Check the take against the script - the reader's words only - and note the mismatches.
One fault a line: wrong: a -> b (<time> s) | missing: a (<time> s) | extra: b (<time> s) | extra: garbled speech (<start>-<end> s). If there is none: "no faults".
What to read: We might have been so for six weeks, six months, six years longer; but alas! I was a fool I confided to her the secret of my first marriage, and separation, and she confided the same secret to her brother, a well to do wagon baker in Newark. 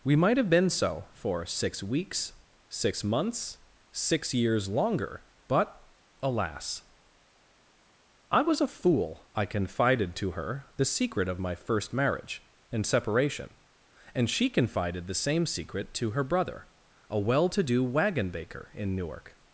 no faults